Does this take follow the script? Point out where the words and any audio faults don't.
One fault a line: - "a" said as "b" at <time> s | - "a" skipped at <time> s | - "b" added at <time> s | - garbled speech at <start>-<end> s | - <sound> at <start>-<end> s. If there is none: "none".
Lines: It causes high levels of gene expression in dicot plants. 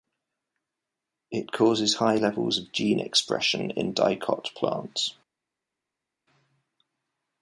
none